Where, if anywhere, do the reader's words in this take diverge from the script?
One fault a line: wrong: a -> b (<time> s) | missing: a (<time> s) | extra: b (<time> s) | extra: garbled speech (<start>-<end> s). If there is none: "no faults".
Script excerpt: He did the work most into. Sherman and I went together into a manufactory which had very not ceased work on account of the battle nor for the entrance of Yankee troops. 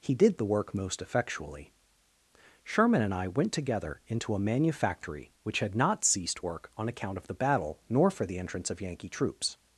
wrong: into -> effectually (1.0 s)
missing: very (5.8 s)